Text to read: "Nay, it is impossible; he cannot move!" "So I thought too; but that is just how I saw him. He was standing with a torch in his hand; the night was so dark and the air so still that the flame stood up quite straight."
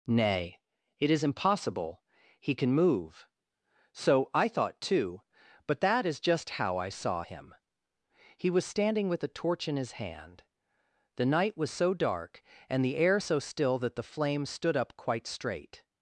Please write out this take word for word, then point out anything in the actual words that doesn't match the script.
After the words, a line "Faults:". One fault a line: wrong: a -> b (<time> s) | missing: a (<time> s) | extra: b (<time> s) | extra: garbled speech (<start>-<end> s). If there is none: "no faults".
"Nay, it is impossible; he can move!" "So I thought too; but that is just how I saw him. He was standing with a torch in his hand; the night was so dark and the air so still that the flame stood up quite straight."
Faults:
wrong: cannot -> can (2.5 s)